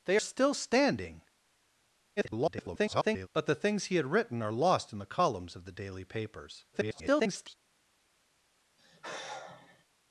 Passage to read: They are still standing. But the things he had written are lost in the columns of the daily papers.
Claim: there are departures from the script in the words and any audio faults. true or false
true